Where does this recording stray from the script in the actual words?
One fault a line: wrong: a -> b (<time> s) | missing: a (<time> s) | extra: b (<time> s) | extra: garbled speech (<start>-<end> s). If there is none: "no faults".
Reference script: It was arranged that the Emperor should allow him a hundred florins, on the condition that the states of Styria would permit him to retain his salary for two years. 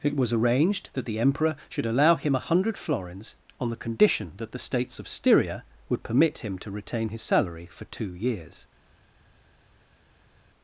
no faults